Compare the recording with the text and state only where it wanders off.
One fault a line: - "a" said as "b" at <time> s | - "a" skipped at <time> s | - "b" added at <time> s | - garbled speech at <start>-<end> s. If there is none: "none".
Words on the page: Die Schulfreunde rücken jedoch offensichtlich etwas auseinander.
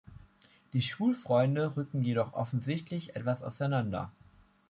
none